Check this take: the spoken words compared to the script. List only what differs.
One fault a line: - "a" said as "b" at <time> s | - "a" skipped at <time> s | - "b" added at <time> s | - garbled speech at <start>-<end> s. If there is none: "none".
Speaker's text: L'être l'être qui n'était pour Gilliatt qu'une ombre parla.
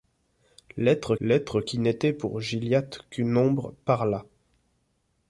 none